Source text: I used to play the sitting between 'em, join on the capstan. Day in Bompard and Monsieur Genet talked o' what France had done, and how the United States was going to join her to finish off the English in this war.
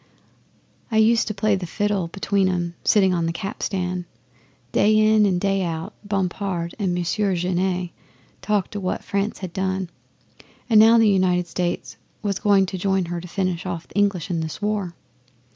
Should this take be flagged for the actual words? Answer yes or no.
yes